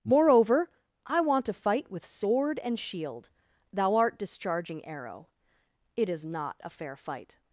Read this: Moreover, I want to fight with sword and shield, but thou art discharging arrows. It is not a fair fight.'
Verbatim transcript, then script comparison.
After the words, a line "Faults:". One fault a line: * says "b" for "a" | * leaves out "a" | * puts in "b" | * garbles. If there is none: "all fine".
Moreover, I want to fight with sword and shield, thou art discharging arrow. It is not a fair fight.'
Faults:
* leaves out "but"
* says "arrow" for "arrows"